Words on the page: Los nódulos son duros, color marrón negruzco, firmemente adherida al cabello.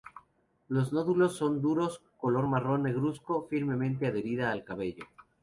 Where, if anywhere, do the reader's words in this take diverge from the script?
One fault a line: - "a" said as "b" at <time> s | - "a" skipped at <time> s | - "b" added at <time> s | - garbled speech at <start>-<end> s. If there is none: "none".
none